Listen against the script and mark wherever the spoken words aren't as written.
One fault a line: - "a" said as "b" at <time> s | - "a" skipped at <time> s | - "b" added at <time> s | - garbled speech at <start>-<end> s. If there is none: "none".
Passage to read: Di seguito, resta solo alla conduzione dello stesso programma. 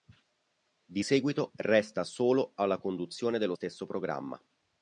none